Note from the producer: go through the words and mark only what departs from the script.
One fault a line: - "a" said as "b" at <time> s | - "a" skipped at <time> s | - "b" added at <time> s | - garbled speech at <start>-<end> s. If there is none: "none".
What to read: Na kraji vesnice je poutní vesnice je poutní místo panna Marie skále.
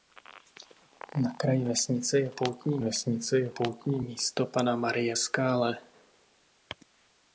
none